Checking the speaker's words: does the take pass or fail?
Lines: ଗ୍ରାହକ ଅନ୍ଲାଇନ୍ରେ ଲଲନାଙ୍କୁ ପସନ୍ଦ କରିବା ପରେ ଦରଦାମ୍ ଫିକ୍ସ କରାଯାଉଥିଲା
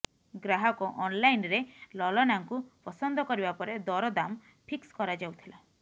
pass